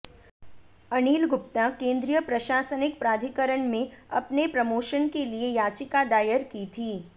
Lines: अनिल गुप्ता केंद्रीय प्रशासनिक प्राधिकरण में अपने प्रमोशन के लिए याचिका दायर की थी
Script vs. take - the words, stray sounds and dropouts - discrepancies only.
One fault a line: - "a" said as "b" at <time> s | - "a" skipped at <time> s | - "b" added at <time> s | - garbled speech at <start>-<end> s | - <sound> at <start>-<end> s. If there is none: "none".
none